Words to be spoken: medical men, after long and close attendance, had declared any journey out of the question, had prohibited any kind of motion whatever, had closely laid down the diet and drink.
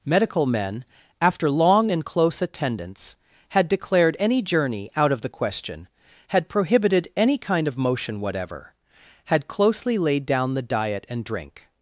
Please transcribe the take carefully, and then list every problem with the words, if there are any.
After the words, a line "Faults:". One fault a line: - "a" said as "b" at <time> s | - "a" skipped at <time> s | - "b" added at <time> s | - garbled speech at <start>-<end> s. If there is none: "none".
medical men, after long and close attendance, had declared any journey out of the question, had prohibited any kind of motion whatever, had closely laid down the diet and drink.
Faults:
none